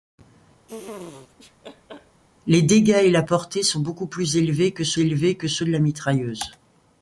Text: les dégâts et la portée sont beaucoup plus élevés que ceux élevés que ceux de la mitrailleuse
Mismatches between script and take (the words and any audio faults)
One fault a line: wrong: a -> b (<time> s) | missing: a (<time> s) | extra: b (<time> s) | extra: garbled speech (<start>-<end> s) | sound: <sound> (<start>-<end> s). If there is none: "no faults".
sound: laugh (0.7-2.2 s)